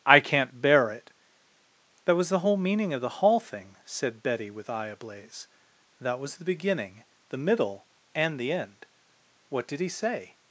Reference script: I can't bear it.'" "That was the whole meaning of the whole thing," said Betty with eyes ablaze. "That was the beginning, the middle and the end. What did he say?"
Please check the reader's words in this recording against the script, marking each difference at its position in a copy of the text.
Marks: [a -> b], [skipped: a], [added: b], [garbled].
I can't bear it.'" "That was the whole meaning of the [whole -> hall] thing," said Betty with [eyes -> eye] ablaze. "That was the beginning, the middle and the end. What did he say?"